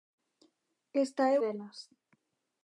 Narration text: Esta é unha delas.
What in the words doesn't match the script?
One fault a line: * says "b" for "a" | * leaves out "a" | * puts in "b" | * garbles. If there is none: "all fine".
* leaves out "unha"